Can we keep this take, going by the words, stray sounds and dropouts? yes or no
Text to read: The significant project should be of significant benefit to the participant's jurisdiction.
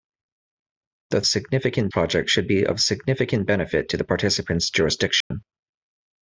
no